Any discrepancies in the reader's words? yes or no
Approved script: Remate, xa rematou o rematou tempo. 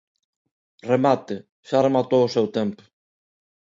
yes